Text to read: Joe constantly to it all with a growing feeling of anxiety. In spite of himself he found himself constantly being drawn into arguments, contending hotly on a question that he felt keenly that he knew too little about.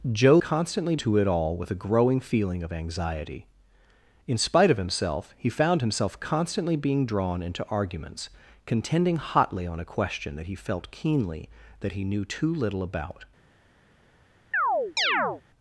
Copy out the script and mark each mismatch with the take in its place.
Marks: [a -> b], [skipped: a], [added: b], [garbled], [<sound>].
Joe constantly to it all with a growing feeling of anxiety. In spite of himself he found himself constantly being drawn into arguments, contending hotly on a question that he felt keenly that he knew too little about. [chirp]